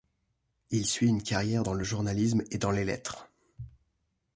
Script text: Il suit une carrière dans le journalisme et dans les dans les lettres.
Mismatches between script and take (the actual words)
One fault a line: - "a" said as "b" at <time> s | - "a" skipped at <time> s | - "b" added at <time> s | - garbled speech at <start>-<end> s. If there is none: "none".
- "dans les" skipped at 2.8 s